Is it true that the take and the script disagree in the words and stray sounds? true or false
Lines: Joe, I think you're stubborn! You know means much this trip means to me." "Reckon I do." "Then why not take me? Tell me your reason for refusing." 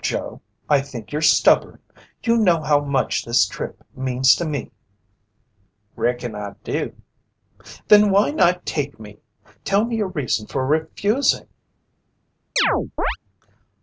true